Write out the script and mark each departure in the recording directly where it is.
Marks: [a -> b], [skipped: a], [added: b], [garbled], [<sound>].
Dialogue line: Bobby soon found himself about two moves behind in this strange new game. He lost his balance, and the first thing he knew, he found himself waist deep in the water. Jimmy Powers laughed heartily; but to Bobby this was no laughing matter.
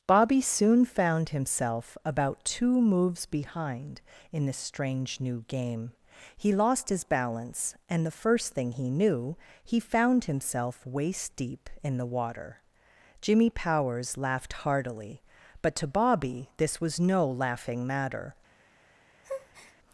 Bobby soon found himself about two moves behind in this strange new game. He lost his balance, and the first thing he knew, he found himself waist deep in the water. Jimmy Powers laughed heartily; but to Bobby this was no laughing matter. [breath]